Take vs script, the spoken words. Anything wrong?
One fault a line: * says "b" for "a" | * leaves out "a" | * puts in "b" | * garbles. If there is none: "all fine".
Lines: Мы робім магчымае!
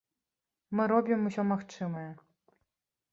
* puts in "усё"